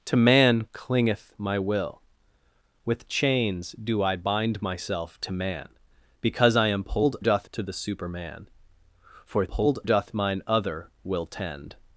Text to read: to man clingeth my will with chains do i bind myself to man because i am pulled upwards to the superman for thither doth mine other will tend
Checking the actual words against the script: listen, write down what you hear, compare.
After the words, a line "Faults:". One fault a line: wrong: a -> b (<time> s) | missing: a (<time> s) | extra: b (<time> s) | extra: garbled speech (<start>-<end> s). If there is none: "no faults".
to man clingeth my will with chains do i bind myself to man because i am pulled doth to the superman for pulled doth mine other will tend
Faults:
wrong: upwards -> doth (7.2 s)
wrong: thither -> pulled (9.5 s)